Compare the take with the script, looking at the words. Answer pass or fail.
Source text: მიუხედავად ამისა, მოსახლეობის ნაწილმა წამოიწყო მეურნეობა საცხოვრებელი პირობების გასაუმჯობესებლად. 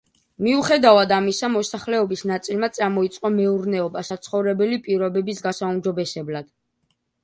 pass